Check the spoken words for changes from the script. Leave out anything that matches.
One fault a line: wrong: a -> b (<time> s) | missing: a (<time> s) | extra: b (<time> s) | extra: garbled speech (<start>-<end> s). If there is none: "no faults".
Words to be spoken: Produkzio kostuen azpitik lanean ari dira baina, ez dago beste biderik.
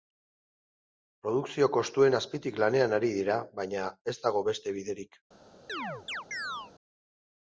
no faults